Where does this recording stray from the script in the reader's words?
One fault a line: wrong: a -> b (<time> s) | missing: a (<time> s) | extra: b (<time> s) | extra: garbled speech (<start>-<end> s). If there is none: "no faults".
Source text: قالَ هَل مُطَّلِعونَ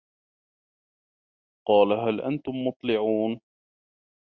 extra: أَنتُم (2.2 s)